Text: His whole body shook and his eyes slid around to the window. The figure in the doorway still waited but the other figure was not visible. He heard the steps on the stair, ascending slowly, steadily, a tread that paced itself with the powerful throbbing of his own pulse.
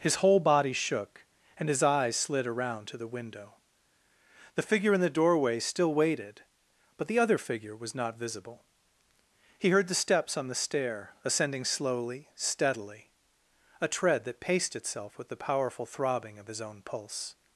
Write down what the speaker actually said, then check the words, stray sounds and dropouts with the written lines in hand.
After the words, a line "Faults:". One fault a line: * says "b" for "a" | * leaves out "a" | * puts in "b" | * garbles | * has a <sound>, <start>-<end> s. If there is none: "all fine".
His whole body shook and his eyes slid around to the window. The figure in the doorway still waited but the other figure was not visible. He heard the steps on the stair, ascending slowly, steadily, a tread that paced itself with the powerful throbbing of his own pulse.
Faults:
all fine